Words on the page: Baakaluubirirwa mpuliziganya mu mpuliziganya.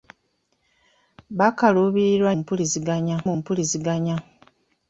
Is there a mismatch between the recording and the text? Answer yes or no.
no